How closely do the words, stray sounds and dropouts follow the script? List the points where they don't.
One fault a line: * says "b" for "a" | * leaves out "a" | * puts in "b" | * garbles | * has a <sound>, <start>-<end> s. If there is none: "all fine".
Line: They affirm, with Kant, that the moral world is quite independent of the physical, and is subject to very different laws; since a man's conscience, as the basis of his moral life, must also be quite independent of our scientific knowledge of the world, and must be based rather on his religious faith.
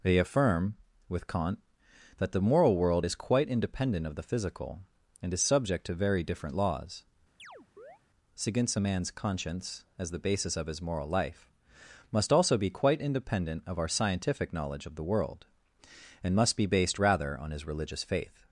* has a chirp, 7.4-8.0 s